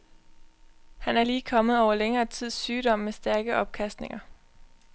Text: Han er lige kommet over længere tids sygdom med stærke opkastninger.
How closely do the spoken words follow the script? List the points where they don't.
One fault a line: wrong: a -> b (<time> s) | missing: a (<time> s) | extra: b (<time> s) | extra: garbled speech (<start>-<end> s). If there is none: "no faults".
no faults